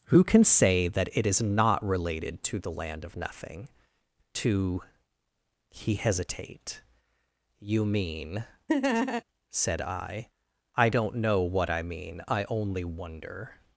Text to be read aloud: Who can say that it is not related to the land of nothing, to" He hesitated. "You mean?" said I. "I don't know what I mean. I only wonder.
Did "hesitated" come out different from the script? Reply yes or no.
yes